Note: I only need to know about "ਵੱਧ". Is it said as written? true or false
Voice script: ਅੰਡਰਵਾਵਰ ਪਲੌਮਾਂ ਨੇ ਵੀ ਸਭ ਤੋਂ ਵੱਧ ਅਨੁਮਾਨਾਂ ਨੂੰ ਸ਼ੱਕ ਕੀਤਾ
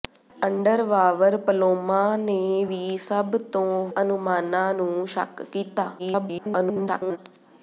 false